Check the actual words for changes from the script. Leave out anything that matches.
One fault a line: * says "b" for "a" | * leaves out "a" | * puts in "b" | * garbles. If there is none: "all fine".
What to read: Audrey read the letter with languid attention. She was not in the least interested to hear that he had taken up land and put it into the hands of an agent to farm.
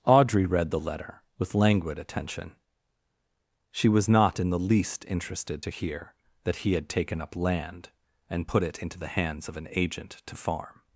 all fine